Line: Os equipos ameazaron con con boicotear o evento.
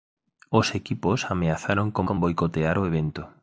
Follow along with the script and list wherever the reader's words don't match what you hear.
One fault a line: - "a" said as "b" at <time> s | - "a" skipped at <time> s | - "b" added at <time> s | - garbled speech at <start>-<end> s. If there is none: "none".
none